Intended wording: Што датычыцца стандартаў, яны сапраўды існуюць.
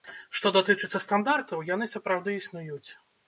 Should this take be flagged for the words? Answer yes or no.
no